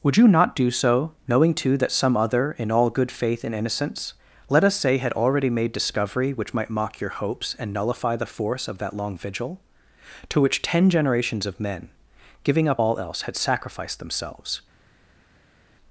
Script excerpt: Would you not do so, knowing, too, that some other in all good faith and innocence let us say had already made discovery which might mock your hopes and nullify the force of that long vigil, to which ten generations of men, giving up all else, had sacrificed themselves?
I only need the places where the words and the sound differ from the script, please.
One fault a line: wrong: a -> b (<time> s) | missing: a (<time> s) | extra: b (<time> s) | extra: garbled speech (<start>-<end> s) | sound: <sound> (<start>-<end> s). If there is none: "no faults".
no faults